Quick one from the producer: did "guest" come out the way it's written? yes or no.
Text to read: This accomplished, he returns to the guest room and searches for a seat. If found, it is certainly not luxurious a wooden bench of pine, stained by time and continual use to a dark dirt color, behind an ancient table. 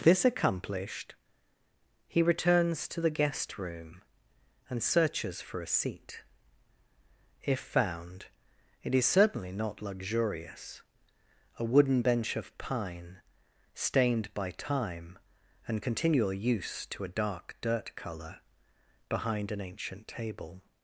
yes